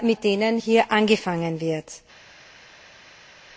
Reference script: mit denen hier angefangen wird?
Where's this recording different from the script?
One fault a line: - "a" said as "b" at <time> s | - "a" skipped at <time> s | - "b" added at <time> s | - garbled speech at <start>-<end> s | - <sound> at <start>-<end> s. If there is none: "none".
none